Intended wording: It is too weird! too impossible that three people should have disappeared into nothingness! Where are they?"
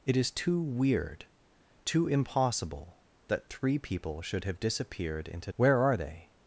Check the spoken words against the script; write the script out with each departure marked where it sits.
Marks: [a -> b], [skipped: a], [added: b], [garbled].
It is too weird! too impossible that three people should have disappeared into [skipped: nothingness!] Where are they?"